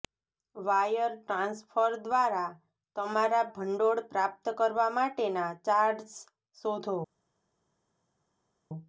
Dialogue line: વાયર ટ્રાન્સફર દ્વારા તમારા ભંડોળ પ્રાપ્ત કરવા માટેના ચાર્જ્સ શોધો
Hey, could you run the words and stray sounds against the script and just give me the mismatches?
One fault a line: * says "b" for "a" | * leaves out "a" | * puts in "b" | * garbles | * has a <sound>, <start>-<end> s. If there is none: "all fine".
all fine